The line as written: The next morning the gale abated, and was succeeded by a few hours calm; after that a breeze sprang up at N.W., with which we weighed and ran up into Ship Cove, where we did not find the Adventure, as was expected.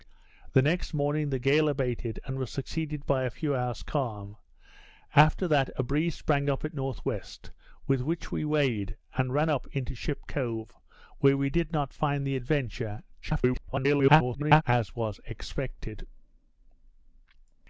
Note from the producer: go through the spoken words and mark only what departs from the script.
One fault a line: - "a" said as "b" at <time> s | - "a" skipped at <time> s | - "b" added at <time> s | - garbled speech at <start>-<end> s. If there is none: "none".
- garbled speech at 13.2-14.6 s